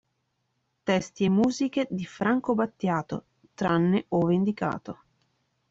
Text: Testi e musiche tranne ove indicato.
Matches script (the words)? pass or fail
fail